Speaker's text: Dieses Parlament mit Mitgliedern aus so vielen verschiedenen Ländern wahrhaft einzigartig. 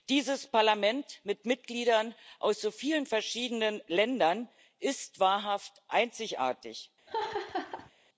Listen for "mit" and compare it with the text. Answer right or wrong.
right